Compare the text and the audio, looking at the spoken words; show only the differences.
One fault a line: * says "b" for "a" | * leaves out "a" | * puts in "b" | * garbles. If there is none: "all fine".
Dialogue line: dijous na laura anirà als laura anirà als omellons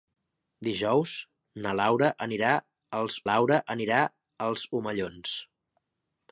all fine